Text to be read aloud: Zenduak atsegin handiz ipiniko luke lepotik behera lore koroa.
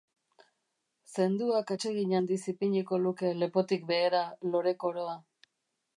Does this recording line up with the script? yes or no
yes